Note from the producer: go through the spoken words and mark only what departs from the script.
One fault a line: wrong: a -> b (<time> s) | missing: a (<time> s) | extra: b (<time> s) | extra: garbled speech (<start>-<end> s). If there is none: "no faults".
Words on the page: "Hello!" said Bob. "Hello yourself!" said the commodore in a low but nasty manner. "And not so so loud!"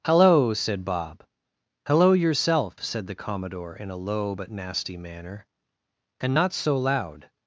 missing: so (6.8 s)